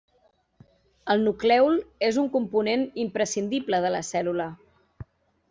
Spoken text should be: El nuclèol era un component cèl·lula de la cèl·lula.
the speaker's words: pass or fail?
fail